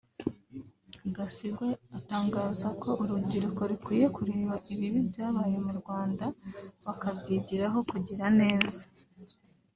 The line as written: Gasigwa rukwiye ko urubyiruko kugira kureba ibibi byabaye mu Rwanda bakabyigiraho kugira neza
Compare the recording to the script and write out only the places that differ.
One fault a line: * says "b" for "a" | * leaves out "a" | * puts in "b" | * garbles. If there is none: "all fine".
* says "atangaza" for "rukwiye"
* says "rukwiye" for "kugira"